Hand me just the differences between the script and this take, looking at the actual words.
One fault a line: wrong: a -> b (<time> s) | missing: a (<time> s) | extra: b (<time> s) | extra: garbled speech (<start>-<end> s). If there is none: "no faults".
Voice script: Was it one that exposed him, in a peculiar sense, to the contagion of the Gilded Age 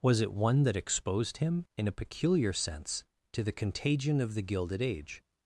no faults